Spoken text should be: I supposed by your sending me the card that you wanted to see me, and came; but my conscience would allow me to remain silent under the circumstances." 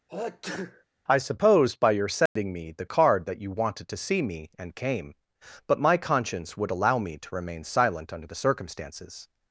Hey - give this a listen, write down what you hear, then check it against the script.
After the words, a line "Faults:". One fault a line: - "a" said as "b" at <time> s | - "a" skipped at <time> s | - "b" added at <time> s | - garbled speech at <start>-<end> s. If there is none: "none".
I supposed by your sending me the card that you wanted to see me, and came; but my conscience would allow me to remain silent under the circumstances."
Faults:
none